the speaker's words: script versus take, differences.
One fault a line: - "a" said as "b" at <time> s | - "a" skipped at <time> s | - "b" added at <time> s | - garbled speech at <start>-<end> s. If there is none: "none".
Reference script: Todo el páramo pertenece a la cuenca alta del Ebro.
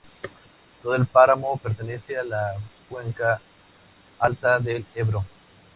none